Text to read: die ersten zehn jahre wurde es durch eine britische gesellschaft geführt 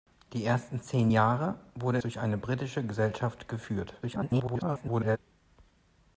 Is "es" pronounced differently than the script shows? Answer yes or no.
yes